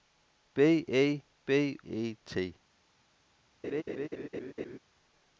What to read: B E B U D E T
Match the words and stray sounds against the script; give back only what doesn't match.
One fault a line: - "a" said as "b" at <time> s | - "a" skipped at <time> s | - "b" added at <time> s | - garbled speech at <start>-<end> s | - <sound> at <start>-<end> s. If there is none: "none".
- "U D" skipped at 1.8 s
- laugh at 3.6-4.8 s